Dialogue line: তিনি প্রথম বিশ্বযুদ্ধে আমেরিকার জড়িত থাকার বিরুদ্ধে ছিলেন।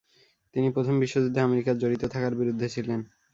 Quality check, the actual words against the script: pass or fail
pass